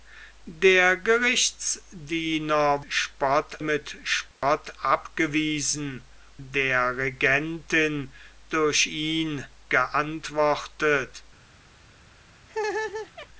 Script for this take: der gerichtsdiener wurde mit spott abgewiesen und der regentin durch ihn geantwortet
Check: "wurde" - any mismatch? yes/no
yes